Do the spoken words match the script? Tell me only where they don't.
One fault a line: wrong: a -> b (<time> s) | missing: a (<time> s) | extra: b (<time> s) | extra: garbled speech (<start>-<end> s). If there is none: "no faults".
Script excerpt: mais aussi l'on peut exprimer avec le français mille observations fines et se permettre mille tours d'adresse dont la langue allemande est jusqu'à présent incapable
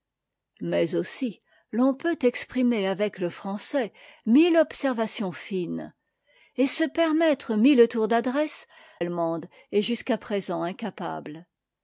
missing: dont la langue (8.7 s)